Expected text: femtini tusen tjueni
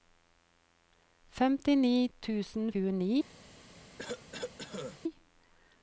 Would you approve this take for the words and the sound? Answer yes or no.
no